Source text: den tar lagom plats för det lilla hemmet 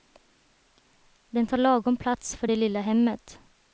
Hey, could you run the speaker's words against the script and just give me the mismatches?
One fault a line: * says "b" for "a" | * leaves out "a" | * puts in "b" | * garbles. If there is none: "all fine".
all fine